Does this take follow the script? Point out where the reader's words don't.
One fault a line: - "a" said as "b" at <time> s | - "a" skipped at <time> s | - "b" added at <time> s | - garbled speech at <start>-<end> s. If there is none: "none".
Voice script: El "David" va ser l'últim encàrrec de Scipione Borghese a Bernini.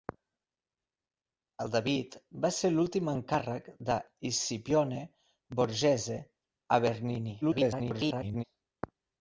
- garbled speech at 7.4-8.4 s